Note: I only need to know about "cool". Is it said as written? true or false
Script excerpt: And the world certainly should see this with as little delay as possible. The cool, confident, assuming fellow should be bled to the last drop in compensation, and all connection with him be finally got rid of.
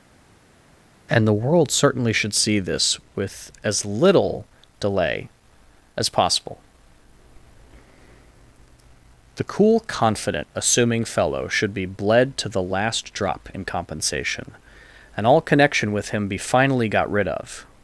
true